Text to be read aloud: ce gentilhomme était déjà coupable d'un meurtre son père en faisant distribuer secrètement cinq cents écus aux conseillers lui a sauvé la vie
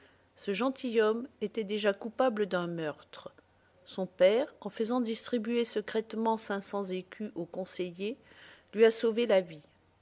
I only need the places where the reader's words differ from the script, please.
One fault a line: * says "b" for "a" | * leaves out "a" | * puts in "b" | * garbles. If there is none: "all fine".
all fine